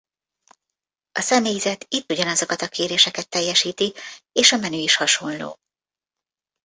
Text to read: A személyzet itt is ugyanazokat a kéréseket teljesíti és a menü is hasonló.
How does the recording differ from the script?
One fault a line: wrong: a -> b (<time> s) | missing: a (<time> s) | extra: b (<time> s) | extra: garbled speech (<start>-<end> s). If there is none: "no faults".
missing: is (2.1 s)